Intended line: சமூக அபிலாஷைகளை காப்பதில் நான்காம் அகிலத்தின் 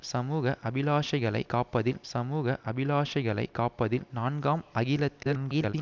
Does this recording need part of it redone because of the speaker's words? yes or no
yes